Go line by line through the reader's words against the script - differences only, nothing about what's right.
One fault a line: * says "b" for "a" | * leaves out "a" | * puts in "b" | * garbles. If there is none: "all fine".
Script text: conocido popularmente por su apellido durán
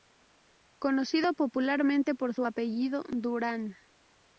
all fine